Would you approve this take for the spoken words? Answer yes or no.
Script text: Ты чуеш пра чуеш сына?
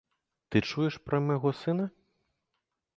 no